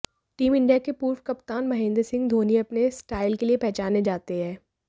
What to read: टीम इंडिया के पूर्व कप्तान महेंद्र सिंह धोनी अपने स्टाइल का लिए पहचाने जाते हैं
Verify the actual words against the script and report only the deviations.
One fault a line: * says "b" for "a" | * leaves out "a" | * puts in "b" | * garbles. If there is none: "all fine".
* says "के" for "का"